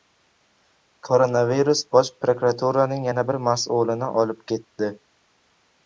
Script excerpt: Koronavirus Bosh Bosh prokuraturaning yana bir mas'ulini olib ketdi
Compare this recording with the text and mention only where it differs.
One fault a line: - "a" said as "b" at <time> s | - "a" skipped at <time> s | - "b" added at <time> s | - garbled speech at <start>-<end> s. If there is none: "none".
- "Bosh" skipped at 2.1 s